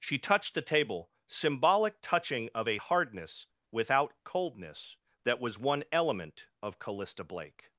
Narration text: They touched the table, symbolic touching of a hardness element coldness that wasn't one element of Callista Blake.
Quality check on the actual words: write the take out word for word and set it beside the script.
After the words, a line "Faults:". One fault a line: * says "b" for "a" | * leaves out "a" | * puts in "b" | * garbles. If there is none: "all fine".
She touched the table, symbolic touching of a hardness without coldness that was one element of Callista Blake.
Faults:
* says "She" for "They"
* says "without" for "element"
* says "was" for "wasn't"